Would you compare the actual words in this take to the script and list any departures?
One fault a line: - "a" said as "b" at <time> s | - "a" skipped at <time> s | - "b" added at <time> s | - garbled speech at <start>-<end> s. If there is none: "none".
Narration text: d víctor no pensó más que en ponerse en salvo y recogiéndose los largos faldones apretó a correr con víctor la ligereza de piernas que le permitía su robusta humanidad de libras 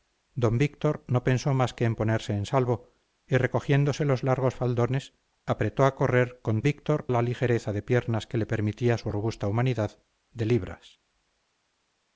none